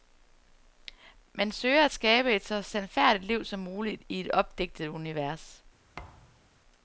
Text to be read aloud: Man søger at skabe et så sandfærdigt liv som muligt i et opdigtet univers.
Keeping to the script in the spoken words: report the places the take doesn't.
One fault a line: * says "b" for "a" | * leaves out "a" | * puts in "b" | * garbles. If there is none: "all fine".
all fine